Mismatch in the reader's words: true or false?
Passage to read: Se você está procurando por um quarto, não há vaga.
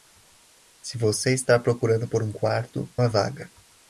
true